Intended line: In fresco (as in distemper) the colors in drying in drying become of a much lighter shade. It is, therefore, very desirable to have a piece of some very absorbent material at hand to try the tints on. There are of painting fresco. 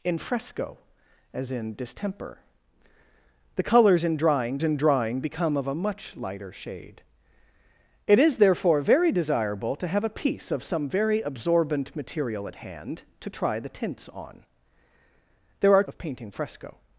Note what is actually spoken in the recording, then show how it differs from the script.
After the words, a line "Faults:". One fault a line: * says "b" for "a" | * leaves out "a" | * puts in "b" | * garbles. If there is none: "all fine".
In fresco (as in distemper) the colors in drying in drying become of a much lighter shade. It is, therefore, very desirable to have a piece of some very absorbent material at hand to try the tints on. There are of painting fresco.
Faults:
all fine